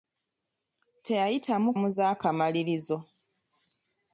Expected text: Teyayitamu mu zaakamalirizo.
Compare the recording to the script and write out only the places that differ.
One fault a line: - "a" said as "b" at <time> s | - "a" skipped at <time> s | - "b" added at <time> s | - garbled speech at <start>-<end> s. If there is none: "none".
none